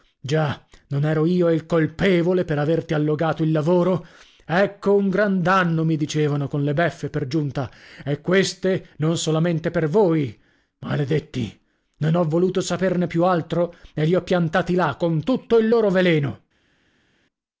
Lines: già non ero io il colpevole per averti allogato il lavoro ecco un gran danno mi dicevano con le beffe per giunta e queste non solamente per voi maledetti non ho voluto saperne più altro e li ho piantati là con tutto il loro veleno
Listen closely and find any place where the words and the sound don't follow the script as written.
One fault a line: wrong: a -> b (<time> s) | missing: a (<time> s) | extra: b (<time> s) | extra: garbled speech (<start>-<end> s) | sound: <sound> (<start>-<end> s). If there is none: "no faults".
no faults